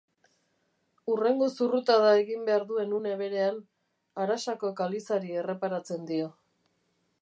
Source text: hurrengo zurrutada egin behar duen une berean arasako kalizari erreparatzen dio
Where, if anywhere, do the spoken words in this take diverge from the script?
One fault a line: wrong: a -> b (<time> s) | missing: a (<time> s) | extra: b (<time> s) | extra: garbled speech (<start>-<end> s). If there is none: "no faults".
no faults